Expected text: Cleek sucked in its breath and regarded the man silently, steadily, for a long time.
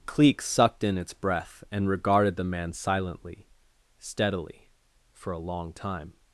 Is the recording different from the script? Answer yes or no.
no